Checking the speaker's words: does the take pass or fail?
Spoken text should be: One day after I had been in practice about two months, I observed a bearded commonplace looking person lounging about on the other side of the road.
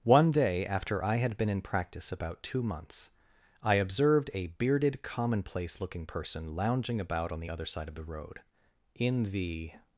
fail